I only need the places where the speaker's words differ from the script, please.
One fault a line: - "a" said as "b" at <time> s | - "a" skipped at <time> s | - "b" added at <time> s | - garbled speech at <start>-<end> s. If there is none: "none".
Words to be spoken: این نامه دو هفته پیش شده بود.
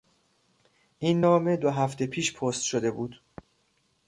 - "پست" added at 2.3 s